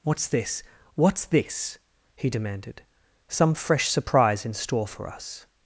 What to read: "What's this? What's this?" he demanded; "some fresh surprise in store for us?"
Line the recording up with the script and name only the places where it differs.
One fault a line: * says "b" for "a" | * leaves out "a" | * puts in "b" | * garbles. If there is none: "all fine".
all fine